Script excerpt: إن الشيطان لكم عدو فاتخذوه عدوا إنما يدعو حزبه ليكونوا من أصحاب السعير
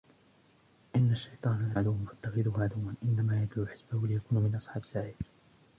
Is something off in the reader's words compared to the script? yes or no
yes